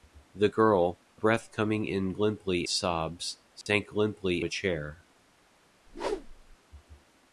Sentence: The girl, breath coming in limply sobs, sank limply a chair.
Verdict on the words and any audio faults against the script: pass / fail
fail